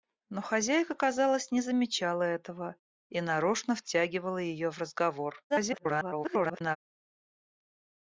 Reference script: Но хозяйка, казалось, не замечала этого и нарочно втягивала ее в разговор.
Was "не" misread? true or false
false